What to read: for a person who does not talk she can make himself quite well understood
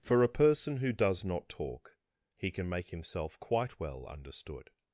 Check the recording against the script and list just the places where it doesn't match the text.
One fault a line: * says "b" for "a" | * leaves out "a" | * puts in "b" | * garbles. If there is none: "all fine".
* says "he" for "she"